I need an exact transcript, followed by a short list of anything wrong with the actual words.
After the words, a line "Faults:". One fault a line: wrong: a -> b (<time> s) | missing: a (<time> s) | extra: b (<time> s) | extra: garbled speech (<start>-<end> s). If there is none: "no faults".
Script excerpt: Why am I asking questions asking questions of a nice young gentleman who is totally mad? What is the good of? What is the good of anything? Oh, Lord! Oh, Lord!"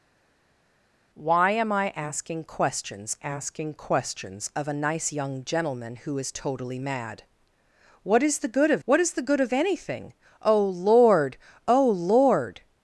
Why am I asking questions asking questions of a nice young gentleman who is totally mad? What is the good of? What is the good of anything? Oh, Lord! Oh, Lord!"
Faults:
no faults